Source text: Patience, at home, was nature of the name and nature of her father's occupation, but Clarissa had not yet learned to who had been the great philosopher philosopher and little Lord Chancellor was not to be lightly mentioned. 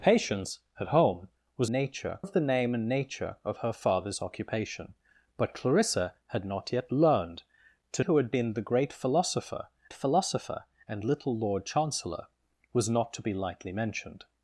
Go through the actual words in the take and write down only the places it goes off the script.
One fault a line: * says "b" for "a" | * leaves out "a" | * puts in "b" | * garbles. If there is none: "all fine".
all fine